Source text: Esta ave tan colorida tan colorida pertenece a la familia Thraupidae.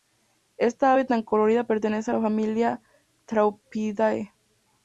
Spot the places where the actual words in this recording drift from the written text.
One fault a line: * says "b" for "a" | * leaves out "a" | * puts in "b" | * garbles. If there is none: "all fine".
* leaves out "tan colorida"